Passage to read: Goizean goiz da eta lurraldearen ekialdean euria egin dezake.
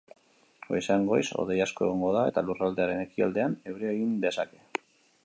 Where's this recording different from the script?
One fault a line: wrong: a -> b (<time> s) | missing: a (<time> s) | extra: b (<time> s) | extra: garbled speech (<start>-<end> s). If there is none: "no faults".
extra: hodei asko egongo (1.4 s)